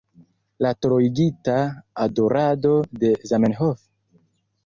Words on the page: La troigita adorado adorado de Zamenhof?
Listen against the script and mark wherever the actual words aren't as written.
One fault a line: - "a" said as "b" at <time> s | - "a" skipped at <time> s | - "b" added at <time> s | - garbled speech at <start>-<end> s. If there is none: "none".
- "adorado" skipped at 2.7 s